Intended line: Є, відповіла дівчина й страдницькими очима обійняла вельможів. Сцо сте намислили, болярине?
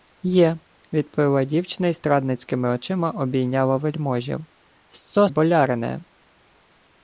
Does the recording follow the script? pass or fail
fail